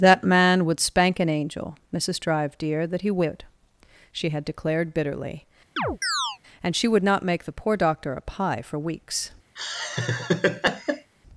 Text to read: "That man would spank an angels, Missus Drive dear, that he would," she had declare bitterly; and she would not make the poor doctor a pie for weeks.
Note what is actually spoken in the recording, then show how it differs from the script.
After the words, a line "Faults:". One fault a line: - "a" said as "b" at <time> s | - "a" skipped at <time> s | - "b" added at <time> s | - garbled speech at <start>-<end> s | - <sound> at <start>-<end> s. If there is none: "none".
"That man would spank an angel, Missus Drive dear, that he would," she had declared bitterly; and she would not make the poor doctor a pie for weeks.
Faults:
- "angels" said as "angel" at 1.3 s
- "declare" said as "declared" at 4.4 s
- chirp at 5.8-6.4 s
- laugh at 9.6-11.1 s